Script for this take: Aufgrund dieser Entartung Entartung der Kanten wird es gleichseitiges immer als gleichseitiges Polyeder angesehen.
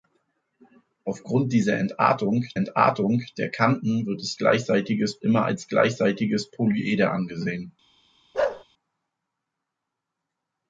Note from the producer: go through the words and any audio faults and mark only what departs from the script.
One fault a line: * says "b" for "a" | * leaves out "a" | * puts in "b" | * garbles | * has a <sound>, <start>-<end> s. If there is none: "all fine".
* has a bark, 8.3-8.6 s